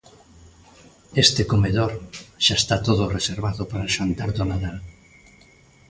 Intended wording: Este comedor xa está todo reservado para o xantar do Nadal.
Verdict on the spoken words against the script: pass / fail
pass